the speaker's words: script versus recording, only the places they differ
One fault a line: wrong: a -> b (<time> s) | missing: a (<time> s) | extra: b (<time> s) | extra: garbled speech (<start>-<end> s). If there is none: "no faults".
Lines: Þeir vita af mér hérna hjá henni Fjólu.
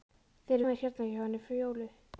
missing: vita (0.6 s)